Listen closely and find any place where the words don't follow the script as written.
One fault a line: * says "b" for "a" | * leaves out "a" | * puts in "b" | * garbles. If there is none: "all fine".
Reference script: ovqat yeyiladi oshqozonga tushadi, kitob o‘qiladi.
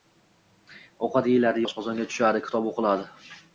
all fine